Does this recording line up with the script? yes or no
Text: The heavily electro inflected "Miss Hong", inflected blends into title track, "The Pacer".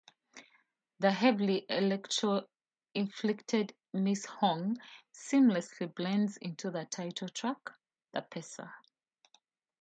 no